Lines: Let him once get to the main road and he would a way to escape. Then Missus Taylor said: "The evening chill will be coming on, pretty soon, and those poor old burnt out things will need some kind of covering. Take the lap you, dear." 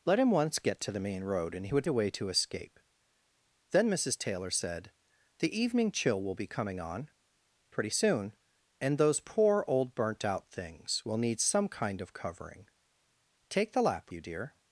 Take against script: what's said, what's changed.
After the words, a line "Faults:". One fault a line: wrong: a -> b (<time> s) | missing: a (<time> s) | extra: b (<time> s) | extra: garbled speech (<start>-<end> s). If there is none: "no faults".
Let him once get to the main road and he would a way to escape. Then Missus Taylor said: "The evening chill will be coming on, pretty soon, and those poor old burnt out things will need some kind of covering. Take the lap you, dear."
Faults:
no faults